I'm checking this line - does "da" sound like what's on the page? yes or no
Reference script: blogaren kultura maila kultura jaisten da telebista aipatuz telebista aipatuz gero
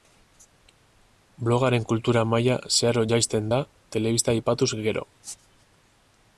yes